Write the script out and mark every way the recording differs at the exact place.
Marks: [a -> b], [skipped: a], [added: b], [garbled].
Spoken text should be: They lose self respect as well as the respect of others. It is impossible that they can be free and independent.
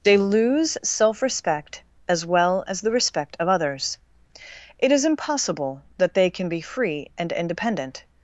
They lose self respect as well as the respect of others. It is impossible that they can be free and independent.